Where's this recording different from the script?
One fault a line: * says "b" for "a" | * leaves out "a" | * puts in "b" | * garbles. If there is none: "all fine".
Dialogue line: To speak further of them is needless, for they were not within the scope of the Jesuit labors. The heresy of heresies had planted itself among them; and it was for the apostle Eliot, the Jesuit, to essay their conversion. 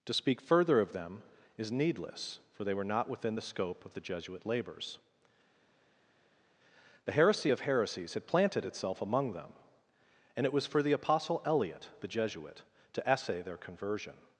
all fine